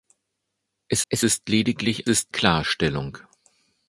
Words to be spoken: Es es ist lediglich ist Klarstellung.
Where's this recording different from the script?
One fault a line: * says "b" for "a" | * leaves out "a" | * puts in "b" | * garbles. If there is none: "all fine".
all fine